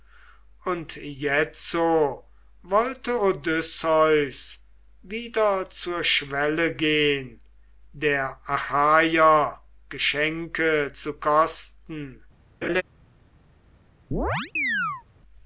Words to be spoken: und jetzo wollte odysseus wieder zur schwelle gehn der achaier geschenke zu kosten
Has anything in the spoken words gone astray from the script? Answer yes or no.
no